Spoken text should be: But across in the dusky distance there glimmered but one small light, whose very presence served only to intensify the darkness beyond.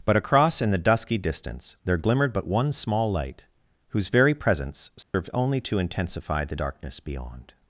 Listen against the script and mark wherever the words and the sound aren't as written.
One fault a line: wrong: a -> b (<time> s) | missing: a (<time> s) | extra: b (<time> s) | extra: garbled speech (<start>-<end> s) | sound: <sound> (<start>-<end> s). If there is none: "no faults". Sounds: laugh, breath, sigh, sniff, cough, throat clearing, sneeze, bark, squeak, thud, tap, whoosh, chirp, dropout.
sound: dropout (5.0-5.1 s)